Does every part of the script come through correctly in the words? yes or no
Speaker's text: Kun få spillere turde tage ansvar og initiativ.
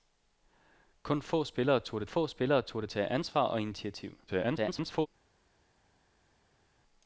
no